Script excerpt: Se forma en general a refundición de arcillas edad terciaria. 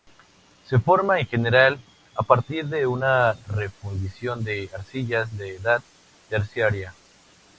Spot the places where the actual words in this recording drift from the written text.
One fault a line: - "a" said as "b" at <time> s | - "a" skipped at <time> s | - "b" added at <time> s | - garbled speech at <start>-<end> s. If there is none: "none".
- "partir de una" added at 2.2 s
- "de" added at 5.4 s